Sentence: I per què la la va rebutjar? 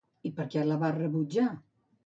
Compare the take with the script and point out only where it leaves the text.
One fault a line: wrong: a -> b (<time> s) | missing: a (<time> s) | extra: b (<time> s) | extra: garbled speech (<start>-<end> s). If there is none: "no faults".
missing: la (0.8 s)